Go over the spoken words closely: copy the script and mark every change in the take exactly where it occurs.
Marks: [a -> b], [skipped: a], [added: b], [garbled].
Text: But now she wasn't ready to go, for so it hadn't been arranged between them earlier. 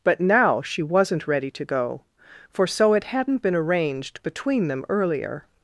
But now she wasn't ready to go, for so it hadn't been arranged between them earlier.